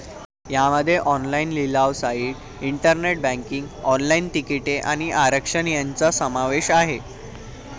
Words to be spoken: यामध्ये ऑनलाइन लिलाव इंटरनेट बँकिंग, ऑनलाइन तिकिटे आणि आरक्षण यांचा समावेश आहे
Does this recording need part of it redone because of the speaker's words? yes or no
yes